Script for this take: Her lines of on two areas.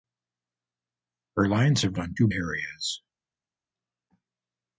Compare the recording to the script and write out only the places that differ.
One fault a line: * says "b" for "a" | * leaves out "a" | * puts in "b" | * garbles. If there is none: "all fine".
all fine